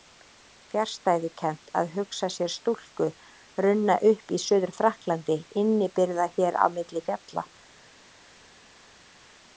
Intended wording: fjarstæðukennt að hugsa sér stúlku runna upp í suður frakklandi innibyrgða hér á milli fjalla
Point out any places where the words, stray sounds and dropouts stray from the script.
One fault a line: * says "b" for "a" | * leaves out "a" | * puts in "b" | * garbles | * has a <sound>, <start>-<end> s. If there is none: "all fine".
all fine